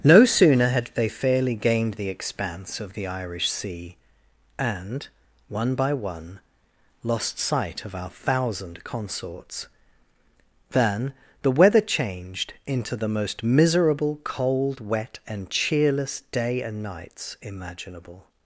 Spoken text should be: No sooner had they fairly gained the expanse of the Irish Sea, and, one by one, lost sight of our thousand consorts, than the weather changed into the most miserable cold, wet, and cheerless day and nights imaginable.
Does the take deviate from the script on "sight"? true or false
false